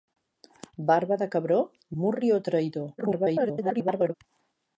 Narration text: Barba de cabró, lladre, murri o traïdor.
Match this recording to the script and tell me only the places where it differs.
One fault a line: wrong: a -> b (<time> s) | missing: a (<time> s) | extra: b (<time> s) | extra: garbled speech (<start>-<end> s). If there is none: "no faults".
missing: lladre (1.6 s)
extra: garbled speech (3.0-4.1 s)